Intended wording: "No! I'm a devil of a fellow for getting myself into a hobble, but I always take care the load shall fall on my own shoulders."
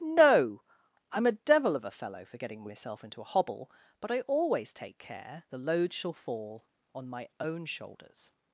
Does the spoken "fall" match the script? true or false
true